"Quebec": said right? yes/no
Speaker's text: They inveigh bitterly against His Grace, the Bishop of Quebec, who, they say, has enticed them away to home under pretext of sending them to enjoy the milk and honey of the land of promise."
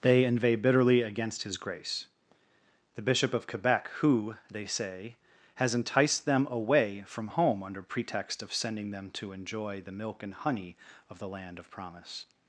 yes